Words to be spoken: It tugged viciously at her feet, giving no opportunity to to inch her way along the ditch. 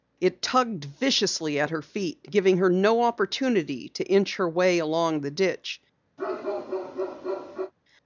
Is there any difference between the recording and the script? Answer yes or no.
yes